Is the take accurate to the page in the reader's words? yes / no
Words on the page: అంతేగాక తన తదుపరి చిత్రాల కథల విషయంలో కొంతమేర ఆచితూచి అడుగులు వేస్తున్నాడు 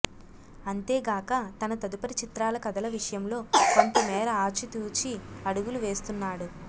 yes